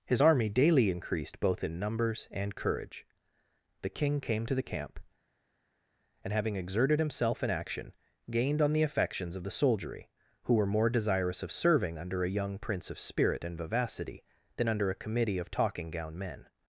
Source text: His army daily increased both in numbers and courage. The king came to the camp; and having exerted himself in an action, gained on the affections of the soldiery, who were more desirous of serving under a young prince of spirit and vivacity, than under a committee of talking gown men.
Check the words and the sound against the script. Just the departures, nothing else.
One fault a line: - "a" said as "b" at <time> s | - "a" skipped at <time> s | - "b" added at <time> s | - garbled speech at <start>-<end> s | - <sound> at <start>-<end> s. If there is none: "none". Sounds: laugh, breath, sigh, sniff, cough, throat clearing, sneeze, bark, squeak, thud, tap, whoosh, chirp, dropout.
- "an" skipped at 7.5 s